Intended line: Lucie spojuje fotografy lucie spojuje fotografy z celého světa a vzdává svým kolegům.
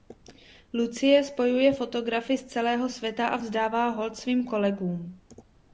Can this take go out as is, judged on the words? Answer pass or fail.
fail